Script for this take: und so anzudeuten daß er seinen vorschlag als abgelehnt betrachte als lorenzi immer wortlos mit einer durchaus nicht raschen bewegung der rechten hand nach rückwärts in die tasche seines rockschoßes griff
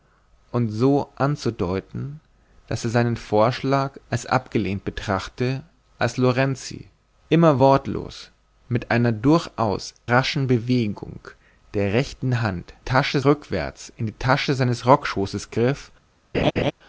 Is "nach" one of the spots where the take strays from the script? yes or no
yes